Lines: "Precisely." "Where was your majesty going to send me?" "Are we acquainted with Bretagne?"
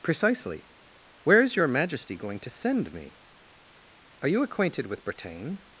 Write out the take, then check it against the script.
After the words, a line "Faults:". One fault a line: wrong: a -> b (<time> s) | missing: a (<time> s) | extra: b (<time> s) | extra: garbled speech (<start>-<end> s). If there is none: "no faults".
"Precisely." "Where is your majesty going to send me?" "Are you acquainted with Bretagne?"
Faults:
wrong: was -> is (1.4 s)
wrong: we -> you (4.3 s)